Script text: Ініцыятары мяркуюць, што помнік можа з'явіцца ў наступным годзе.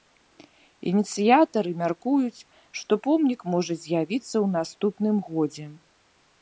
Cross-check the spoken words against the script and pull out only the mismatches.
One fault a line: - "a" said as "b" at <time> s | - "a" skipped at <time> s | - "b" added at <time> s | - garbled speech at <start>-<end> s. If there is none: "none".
none